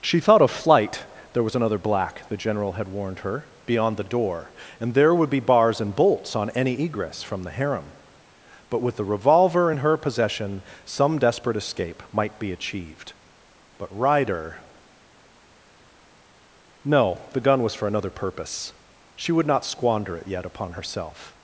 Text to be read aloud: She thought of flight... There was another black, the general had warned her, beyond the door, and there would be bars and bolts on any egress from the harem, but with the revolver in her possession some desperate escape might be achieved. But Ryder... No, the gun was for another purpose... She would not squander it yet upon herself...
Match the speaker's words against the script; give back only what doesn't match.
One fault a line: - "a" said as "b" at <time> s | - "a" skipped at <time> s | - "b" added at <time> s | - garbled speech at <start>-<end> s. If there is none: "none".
none